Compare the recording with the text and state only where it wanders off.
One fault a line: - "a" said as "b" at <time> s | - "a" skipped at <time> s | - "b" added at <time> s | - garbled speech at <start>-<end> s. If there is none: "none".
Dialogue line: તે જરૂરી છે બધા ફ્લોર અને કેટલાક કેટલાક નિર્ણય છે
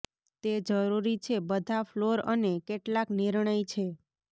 - "કેટલાક" skipped at 3.1 s